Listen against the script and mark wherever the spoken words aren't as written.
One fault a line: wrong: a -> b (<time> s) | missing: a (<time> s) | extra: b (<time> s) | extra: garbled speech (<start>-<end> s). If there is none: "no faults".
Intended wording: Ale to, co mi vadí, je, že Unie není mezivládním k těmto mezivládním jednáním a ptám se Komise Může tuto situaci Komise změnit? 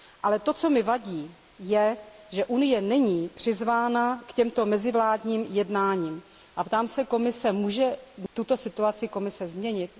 wrong: mezivládním -> přizvána (3.3 s)